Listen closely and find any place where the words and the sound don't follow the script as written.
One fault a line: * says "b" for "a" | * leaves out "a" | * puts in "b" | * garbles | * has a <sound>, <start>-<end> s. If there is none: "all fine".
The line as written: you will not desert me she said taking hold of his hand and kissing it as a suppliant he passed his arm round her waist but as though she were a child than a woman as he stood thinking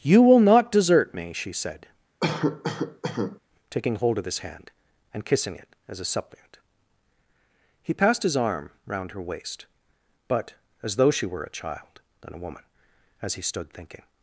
* has a cough, 2.2-3.4 s